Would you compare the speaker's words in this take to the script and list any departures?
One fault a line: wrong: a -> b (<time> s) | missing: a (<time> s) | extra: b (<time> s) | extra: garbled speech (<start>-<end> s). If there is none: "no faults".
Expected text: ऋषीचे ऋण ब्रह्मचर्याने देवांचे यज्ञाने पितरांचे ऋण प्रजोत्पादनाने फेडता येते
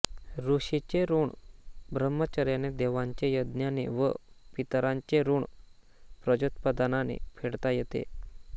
extra: व (3.9 s)